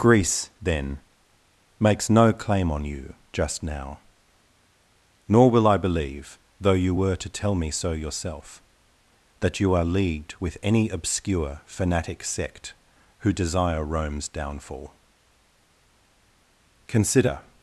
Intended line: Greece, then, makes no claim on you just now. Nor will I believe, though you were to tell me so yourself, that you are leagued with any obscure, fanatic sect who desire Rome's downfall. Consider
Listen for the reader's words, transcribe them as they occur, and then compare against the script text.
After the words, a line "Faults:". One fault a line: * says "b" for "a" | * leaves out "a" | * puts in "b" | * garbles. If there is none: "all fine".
Greece, then, makes no claim on you just now. Nor will I believe, though you were to tell me so yourself, that you are leagued with any obscure, fanatic sect who desire Rome's downfall. Consider
Faults:
all fine